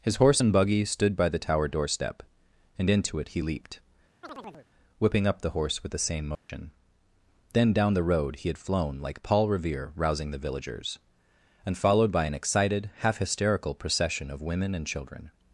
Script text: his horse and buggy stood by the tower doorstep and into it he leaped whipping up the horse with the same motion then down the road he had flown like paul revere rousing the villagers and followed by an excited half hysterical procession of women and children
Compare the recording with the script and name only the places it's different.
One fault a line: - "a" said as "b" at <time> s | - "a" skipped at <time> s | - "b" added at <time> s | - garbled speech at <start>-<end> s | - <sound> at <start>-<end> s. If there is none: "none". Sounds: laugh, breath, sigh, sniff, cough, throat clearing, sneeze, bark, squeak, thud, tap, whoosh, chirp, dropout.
- chirp at 4.2-4.7 s
- dropout at 6.4-6.5 s